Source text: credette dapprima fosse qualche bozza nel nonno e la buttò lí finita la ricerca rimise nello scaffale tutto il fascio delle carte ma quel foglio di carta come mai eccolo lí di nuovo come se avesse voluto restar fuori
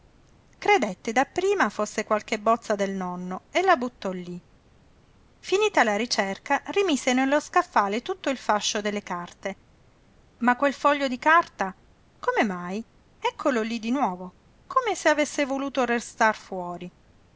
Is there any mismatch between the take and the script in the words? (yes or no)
yes